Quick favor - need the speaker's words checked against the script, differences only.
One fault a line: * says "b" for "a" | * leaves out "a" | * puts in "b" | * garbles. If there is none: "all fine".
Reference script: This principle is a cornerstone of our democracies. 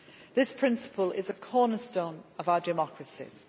all fine